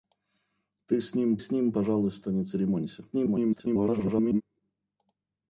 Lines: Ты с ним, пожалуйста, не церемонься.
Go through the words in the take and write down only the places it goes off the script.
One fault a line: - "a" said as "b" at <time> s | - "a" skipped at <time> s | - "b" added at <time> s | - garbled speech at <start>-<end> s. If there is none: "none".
- "с ним" added at 1.4 s
- garbled speech at 3.1-4.4 s